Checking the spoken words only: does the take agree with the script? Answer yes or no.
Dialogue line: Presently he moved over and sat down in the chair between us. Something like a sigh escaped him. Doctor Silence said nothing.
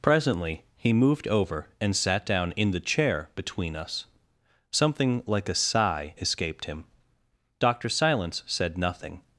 yes